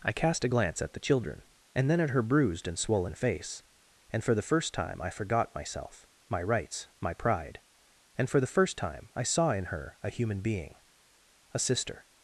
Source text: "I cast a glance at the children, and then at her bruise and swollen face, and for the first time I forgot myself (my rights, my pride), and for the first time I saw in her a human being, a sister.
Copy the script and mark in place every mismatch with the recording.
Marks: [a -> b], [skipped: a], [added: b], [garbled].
"I cast a glance at the children, and then at her [bruise -> bruised] and swollen face, and for the first time I forgot myself (my rights, my pride), and for the first time I saw in her a human being, a sister.